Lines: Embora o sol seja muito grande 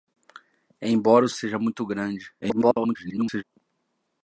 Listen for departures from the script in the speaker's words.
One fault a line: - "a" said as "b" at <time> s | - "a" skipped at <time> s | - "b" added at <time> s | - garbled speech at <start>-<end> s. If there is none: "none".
- "sol" skipped at 1.3 s
- garbled speech at 2.4-3.4 s